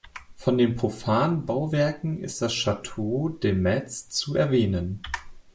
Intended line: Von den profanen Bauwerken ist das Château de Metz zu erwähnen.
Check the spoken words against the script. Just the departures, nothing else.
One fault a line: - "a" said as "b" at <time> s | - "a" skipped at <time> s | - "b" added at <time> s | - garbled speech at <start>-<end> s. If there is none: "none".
none